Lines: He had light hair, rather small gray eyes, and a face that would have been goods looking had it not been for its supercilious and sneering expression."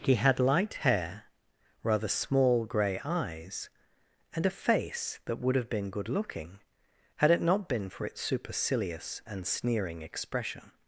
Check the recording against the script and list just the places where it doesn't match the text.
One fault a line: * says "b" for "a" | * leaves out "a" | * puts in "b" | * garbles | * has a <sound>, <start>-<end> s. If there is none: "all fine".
* says "good" for "goods"